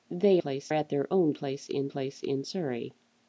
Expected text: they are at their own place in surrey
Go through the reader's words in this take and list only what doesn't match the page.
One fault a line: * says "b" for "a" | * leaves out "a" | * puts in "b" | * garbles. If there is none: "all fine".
* says "place" for "are"
* puts in "place in"